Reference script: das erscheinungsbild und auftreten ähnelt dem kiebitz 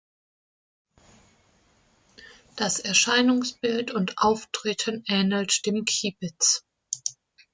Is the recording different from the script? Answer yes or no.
no